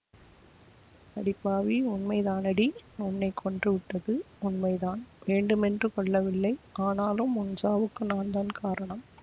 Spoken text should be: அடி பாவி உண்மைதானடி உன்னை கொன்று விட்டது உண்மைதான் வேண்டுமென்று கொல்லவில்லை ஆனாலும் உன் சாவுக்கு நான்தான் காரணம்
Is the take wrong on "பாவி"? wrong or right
right